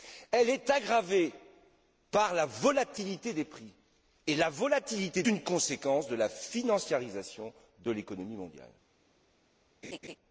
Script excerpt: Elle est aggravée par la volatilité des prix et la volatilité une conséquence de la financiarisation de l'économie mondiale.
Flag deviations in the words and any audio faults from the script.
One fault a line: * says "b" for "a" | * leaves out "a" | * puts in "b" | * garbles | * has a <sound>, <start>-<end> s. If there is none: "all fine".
* has a laugh, 9.8-10.2 s